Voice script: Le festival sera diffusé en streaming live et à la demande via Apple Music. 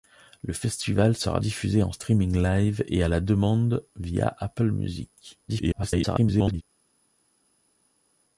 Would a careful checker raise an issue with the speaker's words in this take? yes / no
yes